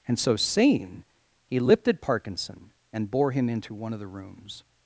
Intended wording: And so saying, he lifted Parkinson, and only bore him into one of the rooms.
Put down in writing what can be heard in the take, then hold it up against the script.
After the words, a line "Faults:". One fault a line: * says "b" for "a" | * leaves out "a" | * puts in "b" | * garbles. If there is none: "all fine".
And so saying, he lifted Parkinson, and bore him into one of the rooms.
Faults:
* leaves out "only"